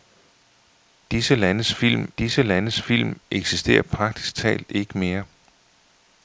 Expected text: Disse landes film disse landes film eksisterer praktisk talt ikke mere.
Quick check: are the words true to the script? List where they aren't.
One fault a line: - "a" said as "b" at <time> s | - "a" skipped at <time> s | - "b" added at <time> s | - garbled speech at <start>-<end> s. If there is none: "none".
none